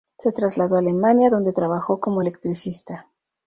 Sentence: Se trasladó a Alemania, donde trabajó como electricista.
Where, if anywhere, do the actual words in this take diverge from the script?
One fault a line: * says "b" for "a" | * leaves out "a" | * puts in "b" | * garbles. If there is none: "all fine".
all fine